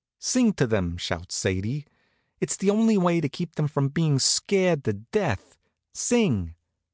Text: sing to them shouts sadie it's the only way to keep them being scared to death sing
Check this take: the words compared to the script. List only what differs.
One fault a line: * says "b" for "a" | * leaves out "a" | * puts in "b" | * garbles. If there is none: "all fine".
* puts in "from"